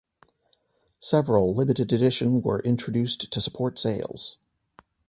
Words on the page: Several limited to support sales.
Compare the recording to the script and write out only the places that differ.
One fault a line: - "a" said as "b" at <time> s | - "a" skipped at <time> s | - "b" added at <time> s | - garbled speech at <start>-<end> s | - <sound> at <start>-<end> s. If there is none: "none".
- "edition were introduced" added at 1.9 s